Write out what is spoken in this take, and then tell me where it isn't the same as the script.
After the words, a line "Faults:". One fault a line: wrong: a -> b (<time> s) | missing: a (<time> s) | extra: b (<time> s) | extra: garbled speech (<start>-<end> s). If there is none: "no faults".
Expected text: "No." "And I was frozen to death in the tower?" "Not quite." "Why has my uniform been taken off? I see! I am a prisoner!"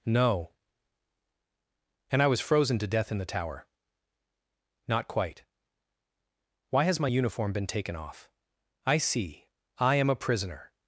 "No." "And I was frozen to death in the tower?" "Not quite." "Why has my uniform been taken off? I see! I am a prisoner!"
Faults:
no faults